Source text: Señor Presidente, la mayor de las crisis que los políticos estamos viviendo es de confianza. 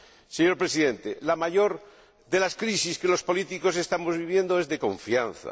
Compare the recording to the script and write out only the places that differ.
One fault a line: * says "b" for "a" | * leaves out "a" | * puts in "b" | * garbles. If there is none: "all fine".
all fine